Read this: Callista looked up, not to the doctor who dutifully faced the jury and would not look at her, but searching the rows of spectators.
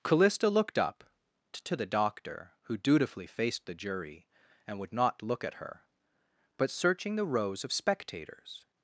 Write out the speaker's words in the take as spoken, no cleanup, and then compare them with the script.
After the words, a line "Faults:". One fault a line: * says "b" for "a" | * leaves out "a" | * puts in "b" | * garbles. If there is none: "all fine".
Callista looked up, to the doctor who dutifully faced the jury and would not look at her, but searching the rows of spectators.
Faults:
* leaves out "not"